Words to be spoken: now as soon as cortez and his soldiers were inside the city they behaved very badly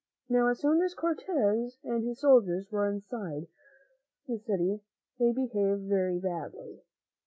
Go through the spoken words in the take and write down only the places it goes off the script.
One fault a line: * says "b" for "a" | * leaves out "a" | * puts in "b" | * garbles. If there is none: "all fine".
all fine